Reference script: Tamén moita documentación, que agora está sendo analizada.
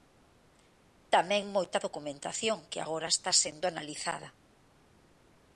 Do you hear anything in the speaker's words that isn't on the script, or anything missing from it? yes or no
no